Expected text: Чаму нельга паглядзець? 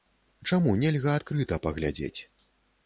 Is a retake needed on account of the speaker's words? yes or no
yes